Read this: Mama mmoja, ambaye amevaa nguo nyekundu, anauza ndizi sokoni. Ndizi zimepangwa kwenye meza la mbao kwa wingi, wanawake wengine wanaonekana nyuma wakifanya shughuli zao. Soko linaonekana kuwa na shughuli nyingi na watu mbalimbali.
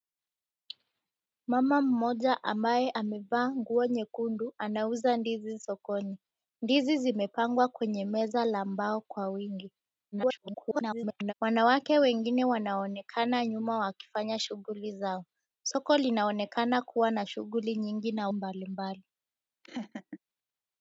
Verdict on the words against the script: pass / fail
fail